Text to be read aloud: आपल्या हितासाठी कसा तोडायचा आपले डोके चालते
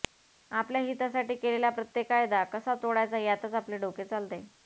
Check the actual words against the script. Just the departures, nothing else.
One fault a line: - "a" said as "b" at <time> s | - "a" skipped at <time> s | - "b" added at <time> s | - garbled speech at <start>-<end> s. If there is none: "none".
- "केलेला प्रत्येक कायदा" added at 1.4 s
- "यातच" added at 3.2 s